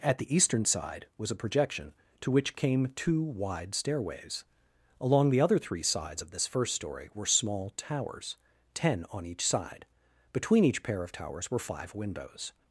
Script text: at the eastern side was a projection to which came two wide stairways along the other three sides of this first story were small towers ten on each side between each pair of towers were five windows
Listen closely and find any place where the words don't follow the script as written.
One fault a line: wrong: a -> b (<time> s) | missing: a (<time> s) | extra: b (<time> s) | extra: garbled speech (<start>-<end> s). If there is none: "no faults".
no faults